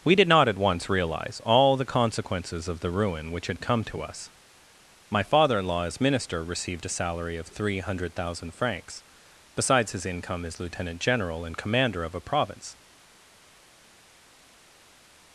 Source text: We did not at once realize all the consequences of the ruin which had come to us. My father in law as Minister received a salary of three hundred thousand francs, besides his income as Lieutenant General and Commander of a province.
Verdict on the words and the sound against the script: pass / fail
pass